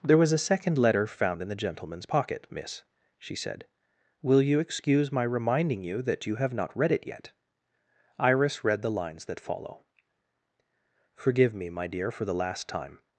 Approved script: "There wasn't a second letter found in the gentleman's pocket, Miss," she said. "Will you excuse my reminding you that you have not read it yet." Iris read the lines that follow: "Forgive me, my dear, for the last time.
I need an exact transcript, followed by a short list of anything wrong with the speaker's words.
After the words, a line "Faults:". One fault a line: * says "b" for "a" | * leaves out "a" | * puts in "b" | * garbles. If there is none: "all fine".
"There was a second letter found in the gentleman's pocket, Miss," she said. "Will you excuse my reminding you that you have not read it yet." Iris read the lines that follow: "Forgive me, my dear, for the last time.
Faults:
* says "was" for "wasn't"